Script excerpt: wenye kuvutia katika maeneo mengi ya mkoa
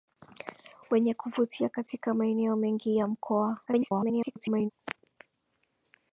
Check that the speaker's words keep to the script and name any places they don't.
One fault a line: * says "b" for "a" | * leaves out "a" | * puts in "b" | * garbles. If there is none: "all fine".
* garbles